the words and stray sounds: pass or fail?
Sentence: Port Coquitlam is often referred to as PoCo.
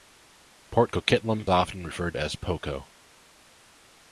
fail